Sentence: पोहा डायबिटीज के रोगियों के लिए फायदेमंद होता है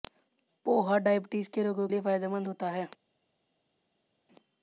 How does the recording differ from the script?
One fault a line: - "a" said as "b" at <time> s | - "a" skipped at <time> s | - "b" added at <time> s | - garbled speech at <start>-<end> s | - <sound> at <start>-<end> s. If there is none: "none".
- "के" skipped at 1.9 s